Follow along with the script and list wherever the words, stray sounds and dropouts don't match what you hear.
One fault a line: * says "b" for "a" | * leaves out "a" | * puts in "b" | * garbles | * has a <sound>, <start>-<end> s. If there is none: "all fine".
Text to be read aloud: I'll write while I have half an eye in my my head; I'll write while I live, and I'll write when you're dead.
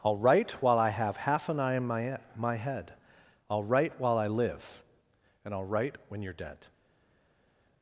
all fine